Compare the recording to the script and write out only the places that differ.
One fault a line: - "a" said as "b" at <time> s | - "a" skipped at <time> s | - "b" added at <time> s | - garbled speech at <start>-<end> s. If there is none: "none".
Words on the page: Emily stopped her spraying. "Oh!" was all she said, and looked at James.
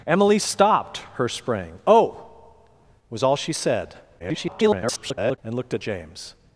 - garbled speech at 4.2-5.4 s